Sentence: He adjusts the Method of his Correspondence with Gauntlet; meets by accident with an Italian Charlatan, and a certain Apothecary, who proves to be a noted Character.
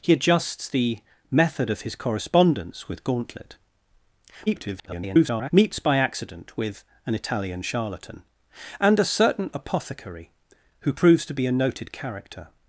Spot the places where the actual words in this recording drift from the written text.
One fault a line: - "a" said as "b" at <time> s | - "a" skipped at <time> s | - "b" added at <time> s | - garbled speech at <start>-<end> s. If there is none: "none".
- garbled speech at 4.5-5.5 s